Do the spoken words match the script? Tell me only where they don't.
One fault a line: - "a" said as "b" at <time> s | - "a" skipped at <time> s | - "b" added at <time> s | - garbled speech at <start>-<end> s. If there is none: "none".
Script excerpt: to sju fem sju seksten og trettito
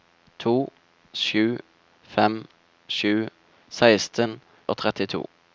none